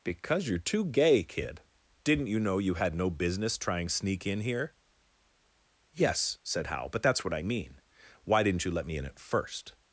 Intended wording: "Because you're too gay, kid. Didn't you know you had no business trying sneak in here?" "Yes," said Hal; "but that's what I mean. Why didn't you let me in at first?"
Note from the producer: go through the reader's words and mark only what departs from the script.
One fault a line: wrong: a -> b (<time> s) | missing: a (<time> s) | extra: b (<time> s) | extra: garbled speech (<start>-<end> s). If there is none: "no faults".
no faults